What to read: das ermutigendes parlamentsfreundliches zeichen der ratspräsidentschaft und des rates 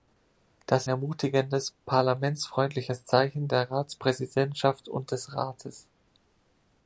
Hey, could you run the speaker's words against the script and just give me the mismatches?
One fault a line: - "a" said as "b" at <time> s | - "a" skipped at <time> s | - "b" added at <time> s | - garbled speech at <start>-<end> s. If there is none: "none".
none